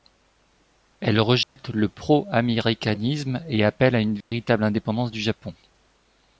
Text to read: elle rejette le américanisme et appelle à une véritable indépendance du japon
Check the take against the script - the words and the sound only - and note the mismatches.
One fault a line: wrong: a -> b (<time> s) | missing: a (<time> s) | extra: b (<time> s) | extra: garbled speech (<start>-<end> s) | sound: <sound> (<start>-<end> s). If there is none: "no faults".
sound: dropout (1.4-1.6 s)
extra: pro (1.9 s)
sound: dropout (4.2-4.3 s)